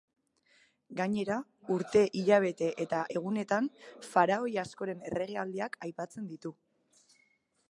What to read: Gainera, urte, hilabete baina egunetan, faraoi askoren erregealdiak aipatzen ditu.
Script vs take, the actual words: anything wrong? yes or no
yes